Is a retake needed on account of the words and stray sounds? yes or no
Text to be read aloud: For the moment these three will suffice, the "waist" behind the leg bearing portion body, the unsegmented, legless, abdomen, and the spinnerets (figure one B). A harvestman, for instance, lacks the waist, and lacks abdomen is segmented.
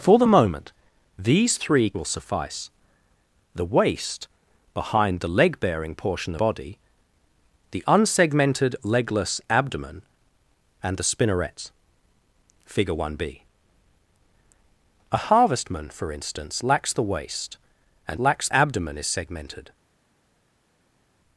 no